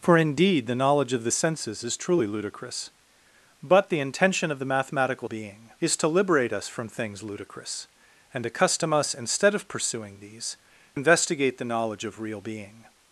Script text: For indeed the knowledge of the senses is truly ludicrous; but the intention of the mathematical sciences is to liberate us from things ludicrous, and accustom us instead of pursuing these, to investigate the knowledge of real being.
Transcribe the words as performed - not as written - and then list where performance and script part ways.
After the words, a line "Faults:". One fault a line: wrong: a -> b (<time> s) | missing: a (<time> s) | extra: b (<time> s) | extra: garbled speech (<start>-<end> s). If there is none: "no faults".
For indeed the knowledge of the senses is truly ludicrous; but the intention of the mathematical being is to liberate us from things ludicrous, and accustom us instead of pursuing these, investigate the knowledge of real being.
Faults:
wrong: sciences -> being (5.2 s)
missing: to (10.6 s)